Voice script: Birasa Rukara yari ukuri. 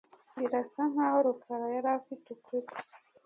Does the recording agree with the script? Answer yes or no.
no